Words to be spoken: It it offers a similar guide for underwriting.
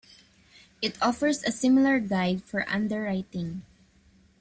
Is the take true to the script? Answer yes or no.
no